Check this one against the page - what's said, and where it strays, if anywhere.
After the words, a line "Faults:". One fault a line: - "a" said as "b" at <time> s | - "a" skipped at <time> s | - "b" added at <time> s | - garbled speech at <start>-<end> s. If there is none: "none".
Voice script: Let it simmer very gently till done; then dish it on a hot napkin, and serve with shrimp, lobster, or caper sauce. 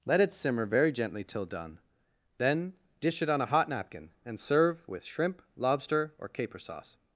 Let it simmer very gently till done; then dish it on a hot napkin, and serve with shrimp, lobster, or caper sauce.
Faults:
none